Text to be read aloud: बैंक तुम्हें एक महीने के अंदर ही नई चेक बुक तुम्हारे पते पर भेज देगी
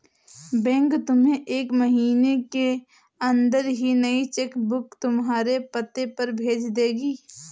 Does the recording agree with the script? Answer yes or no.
yes